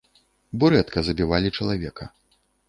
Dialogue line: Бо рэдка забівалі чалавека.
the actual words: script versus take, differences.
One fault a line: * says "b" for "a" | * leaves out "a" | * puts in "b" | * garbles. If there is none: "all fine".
all fine